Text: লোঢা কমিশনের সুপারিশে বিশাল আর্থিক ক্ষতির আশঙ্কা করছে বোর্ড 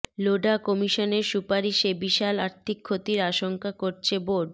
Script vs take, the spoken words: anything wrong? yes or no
no